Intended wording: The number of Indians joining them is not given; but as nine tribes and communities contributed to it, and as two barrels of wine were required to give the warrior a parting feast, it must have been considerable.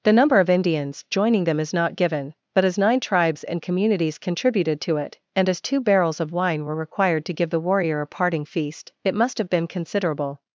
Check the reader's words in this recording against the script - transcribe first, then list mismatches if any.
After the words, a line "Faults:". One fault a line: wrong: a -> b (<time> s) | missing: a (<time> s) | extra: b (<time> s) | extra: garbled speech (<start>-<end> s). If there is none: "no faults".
The number of Indians joining them is not given; but as nine tribes and communities contributed to it, and as two barrels of wine were required to give the warrior a parting feast, it must have been considerable.
Faults:
no faults